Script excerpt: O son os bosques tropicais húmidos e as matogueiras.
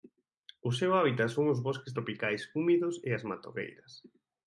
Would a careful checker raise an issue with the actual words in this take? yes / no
yes